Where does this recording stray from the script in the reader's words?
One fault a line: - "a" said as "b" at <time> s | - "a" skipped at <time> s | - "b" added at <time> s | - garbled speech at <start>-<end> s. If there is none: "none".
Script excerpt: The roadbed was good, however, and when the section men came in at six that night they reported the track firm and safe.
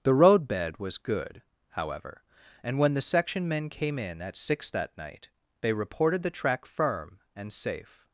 none